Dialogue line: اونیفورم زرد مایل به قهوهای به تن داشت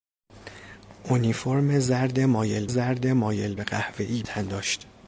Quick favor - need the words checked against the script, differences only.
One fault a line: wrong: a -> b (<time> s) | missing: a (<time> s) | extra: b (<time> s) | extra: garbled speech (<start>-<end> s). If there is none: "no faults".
extra: زرد مایل (2.7 s)
missing: به (4.2 s)